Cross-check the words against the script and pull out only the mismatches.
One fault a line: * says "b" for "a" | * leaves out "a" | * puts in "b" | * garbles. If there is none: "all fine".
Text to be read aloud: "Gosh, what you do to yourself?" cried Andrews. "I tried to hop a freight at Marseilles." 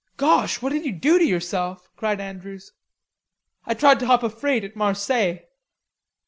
* puts in "did"